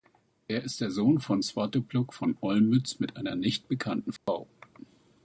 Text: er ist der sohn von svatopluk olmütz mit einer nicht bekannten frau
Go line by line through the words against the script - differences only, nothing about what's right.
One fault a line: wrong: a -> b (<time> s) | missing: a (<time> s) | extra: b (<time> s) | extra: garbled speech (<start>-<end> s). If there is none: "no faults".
extra: von (2.1 s)